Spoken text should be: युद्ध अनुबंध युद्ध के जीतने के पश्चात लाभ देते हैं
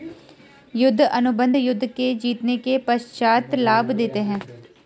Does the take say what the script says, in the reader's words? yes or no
yes